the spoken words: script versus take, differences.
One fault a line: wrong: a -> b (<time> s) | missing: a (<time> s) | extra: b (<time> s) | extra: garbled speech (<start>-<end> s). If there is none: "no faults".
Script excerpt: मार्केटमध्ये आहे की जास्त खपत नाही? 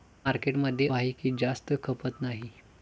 no faults